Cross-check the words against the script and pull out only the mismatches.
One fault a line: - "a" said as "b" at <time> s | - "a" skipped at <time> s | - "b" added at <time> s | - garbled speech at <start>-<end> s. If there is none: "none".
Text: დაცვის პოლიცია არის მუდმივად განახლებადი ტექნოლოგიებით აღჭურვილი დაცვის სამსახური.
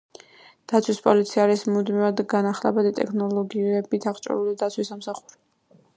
none